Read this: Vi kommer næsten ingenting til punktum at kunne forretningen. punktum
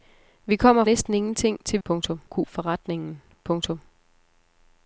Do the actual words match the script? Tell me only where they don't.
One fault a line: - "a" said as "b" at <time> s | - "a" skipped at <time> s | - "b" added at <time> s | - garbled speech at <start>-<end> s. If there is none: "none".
none